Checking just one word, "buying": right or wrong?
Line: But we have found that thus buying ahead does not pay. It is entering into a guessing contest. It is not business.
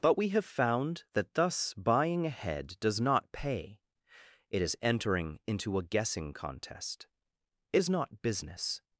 right